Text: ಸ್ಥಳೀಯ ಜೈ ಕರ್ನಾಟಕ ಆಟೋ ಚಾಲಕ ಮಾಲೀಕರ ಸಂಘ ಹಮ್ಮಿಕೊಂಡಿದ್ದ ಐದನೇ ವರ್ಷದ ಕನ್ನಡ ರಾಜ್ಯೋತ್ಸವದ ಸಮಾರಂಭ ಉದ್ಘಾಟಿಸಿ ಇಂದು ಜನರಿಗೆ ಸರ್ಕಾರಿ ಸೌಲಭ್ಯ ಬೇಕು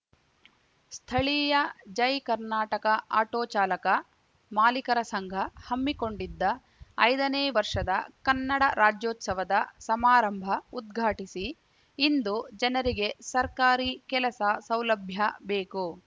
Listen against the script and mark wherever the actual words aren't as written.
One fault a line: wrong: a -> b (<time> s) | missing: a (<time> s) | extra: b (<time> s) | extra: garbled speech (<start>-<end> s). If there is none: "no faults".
extra: ಕೆಲಸ (14.1 s)